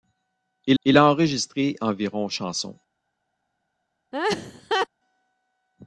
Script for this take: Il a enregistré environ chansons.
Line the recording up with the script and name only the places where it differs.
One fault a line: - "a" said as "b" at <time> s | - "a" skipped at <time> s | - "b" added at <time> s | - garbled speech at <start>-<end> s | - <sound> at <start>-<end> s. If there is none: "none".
- "il" added at 0.8 s
- laugh at 4.1-4.9 s